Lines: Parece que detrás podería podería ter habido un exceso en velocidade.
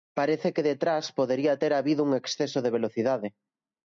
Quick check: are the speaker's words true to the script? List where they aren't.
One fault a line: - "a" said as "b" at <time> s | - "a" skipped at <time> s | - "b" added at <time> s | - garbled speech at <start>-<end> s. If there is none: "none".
- "podería" skipped at 1.6 s
- "en" said as "de" at 2.6 s